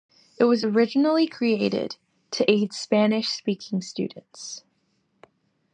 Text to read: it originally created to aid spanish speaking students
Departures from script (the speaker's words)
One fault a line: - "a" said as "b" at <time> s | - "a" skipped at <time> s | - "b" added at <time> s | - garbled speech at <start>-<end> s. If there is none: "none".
- "was" added at 0.5 s